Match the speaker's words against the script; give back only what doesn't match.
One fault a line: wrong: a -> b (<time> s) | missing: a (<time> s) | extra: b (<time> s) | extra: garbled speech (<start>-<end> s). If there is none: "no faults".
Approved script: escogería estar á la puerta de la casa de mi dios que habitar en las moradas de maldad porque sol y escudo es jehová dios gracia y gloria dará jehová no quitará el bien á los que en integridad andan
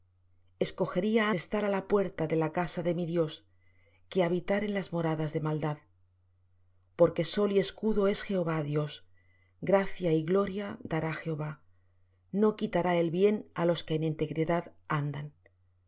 no faults